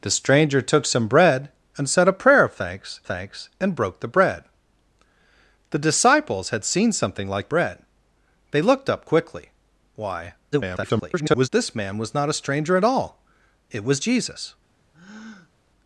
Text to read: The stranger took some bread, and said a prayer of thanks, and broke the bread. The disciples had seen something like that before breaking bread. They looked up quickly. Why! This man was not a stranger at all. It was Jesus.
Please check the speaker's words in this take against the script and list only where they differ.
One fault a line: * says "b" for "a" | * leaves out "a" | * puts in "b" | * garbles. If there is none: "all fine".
* puts in "thanks"
* leaves out "that before breaking"
* garbles